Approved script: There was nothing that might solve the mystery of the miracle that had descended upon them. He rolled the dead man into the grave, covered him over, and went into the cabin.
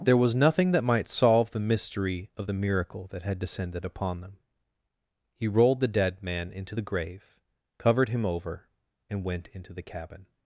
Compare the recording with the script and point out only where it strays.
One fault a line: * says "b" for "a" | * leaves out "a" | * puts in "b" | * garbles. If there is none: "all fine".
all fine